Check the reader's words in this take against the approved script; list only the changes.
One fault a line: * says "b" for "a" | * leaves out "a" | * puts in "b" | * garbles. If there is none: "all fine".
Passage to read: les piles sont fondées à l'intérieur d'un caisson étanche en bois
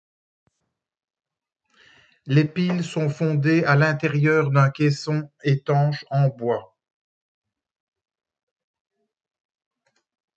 all fine